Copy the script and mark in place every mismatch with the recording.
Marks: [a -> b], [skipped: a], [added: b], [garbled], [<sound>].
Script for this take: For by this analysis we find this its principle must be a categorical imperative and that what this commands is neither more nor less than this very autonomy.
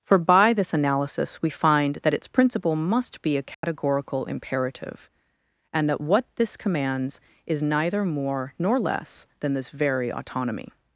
For by this analysis we find [this -> that] its principle must be a categorical [dropout] imperative and that what this commands is neither more nor less than this very autonomy.